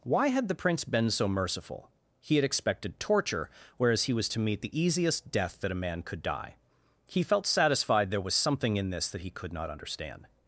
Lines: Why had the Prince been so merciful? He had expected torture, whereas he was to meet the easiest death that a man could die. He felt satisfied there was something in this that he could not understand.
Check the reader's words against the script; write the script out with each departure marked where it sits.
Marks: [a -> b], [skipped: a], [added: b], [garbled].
Why had the Prince been so merciful? He had expected torture, whereas he was to meet the easiest death that a man could die. He felt satisfied there was something in this that he could not understand.